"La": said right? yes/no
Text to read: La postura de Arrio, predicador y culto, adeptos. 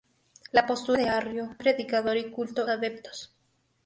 yes